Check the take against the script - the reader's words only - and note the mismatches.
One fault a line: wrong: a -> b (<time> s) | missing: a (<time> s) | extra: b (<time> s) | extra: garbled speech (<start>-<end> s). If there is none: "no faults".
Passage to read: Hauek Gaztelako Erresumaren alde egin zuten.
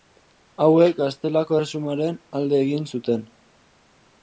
no faults